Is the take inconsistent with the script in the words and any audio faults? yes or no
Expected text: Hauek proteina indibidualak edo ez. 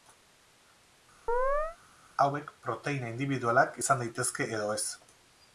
yes